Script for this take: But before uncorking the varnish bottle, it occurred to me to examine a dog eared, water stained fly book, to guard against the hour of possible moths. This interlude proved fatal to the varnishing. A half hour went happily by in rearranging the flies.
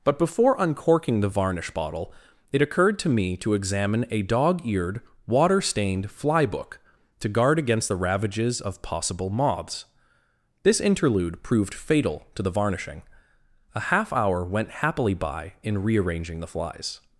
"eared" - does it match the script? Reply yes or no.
yes